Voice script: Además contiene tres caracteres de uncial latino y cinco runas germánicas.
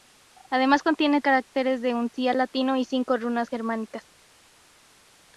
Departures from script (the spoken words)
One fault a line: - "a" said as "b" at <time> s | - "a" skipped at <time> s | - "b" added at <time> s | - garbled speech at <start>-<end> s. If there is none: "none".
- "tres" skipped at 1.2 s